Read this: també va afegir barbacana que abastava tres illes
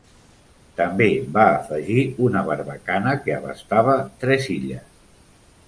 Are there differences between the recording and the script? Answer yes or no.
yes